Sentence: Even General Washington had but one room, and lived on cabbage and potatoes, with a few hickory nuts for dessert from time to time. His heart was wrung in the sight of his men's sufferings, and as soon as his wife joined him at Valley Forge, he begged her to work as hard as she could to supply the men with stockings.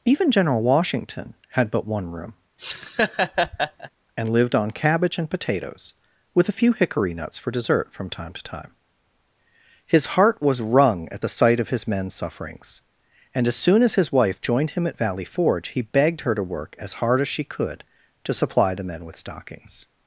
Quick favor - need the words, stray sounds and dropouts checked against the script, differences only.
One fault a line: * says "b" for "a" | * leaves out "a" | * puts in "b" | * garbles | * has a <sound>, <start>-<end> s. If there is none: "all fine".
* has a laugh, 2.6-3.9 s
* says "at" for "in"